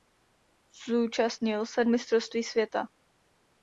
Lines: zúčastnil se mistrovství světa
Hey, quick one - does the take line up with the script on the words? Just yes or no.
yes